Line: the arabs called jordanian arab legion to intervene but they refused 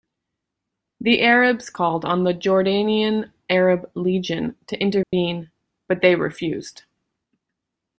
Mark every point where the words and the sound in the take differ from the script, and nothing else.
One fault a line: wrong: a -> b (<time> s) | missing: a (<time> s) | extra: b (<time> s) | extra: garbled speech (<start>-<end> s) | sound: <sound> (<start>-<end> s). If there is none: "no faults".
extra: on the (2.0 s)
sound: dropout (5.0-5.1 s)